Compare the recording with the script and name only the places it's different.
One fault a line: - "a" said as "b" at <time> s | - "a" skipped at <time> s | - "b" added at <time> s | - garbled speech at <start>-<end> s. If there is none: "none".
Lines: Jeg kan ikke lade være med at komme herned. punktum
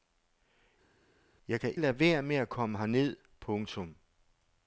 - "ikke" skipped at 1.8 s